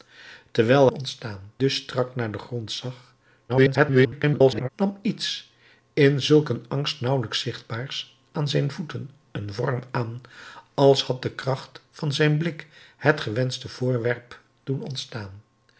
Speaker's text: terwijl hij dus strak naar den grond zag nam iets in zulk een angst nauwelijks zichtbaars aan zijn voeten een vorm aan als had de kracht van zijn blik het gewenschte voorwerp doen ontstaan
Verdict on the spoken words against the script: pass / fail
fail